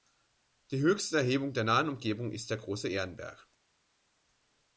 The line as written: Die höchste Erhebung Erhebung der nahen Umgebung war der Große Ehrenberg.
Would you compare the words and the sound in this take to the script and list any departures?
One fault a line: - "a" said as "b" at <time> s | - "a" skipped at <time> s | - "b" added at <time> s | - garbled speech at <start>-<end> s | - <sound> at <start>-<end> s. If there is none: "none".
- "Erhebung" skipped at 1.5 s
- "war" said as "ist" at 2.3 s